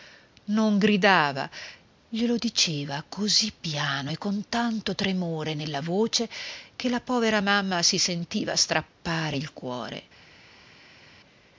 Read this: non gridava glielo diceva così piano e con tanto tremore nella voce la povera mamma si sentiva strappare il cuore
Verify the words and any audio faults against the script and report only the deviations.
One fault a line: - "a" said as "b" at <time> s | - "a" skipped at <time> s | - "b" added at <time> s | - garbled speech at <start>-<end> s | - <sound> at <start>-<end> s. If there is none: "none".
- "che" added at 6.8 s